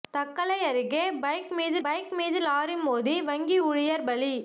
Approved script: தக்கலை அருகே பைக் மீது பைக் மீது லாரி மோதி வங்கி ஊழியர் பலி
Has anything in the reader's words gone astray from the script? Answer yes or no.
no